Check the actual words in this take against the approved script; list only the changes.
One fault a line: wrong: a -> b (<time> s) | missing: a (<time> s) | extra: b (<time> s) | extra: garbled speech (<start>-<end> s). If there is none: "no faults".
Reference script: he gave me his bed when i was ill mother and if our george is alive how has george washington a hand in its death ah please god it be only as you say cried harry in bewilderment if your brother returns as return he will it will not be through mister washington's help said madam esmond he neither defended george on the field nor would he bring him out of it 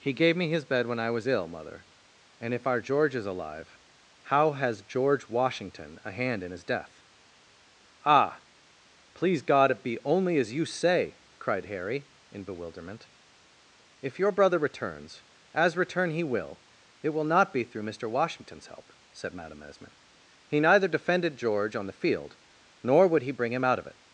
wrong: its -> his (6.5 s)